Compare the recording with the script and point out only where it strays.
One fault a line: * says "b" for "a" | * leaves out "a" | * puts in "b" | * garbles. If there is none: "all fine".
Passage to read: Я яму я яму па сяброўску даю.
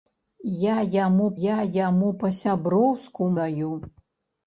all fine